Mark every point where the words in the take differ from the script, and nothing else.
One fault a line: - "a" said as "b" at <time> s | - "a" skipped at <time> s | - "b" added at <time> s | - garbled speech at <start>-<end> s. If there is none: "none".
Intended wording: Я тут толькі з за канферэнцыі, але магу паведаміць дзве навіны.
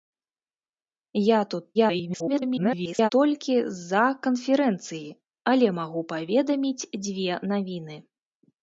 - garbled speech at 1.7-3.1 s